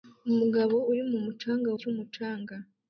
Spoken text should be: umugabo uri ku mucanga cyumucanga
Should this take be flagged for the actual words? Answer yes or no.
no